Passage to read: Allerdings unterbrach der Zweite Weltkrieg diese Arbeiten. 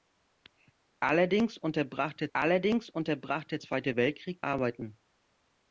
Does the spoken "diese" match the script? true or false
false